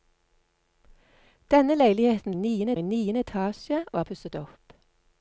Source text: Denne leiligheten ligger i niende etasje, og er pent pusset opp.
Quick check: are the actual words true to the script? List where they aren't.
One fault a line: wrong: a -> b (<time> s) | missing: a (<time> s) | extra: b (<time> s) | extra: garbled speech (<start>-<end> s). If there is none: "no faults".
wrong: ligger -> niende (2.3 s)
missing: pent (4.0 s)